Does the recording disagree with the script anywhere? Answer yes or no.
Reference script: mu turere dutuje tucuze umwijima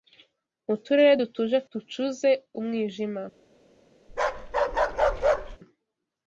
no